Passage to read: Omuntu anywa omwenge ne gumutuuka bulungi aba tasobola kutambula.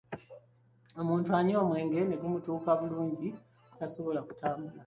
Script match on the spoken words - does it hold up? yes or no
no